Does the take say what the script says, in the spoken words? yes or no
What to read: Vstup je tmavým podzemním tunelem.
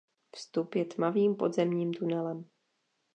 yes